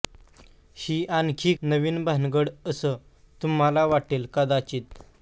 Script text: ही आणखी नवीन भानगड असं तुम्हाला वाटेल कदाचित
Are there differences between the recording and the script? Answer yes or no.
no